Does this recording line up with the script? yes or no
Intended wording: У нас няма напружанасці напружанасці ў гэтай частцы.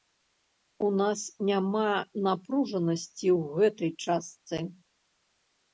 no